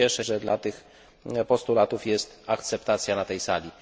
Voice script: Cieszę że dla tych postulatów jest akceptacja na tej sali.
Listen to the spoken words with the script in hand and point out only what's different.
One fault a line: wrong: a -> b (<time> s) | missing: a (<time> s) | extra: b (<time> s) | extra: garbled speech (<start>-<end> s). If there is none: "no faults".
no faults